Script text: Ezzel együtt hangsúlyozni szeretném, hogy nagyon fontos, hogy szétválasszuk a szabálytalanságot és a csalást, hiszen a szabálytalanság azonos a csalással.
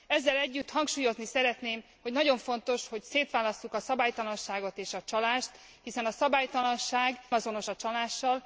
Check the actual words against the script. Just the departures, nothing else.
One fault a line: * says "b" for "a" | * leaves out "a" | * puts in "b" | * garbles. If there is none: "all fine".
all fine